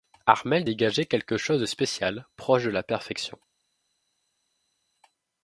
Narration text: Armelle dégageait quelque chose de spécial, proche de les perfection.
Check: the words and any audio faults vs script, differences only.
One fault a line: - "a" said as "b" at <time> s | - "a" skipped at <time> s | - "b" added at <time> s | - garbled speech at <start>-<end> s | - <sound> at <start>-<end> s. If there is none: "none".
- "les" said as "la" at 2.7 s